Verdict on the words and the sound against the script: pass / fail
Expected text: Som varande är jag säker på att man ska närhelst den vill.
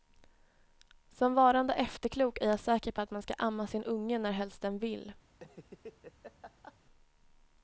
fail